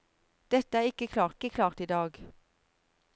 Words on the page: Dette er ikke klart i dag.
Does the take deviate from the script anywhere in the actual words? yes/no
yes